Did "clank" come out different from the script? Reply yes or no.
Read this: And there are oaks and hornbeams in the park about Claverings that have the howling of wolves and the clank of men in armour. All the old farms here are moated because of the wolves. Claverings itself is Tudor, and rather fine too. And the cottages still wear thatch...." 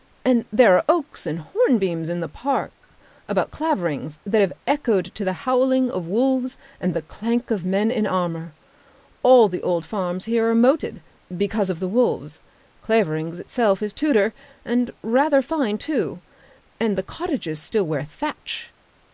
no